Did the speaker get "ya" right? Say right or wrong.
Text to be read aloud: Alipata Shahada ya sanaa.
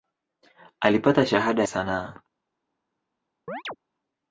wrong